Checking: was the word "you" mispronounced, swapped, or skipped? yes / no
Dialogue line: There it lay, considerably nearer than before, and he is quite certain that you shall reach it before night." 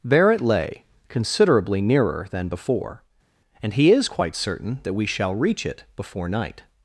yes